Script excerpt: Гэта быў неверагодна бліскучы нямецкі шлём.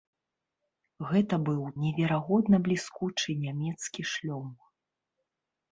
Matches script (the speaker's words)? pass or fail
pass